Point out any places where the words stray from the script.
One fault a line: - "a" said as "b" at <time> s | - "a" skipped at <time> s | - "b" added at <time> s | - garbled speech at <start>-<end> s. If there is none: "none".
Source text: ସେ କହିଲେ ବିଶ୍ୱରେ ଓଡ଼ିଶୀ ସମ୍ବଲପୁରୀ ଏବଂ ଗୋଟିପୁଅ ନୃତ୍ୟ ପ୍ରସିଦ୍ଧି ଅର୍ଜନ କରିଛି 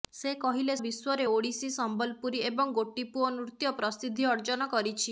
none